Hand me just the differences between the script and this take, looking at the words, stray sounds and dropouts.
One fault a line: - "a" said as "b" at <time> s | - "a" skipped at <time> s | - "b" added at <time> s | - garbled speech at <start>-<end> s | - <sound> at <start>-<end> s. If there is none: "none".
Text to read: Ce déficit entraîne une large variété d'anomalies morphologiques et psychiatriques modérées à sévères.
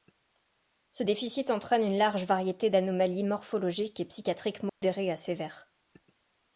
- dropout at 4.7-4.8 s